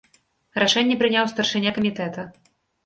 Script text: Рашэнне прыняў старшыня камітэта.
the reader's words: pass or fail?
pass